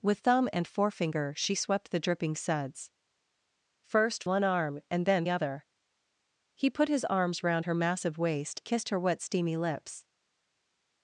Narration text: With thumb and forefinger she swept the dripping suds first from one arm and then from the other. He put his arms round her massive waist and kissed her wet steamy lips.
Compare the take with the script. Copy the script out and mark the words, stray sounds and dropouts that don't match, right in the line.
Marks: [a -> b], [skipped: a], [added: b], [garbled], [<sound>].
With thumb and forefinger she swept the dripping suds first [skipped: from] one arm and then [skipped: from the] other. He put his arms round her massive waist [skipped: and] kissed her wet steamy lips.